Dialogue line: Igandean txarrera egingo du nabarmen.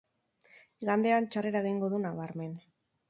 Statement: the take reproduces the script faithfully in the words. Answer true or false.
true